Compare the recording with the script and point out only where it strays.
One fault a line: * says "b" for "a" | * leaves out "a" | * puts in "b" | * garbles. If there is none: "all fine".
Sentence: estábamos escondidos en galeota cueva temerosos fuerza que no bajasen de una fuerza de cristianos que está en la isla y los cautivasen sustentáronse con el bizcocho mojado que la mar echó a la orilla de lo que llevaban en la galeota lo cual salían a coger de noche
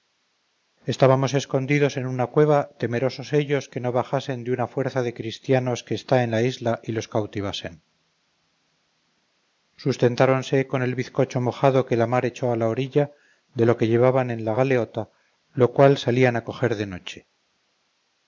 * says "una" for "galeota"
* says "ellos" for "fuerza"